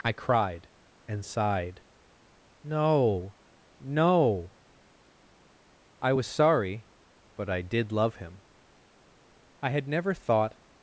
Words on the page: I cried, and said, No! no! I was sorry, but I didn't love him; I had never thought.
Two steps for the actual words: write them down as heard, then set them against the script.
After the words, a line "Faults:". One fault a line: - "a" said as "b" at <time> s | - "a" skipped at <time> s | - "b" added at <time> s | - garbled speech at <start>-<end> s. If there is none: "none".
I cried, and sighed, No! no! I was sorry, but I did love him; I had never thought.
Faults:
- "said" said as "sighed" at 1.2 s
- "didn't" said as "did" at 7.6 s